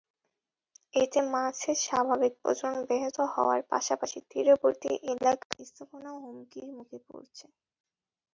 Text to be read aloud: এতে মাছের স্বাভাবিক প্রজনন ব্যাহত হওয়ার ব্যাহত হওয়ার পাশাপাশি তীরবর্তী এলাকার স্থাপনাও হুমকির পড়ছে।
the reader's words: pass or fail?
fail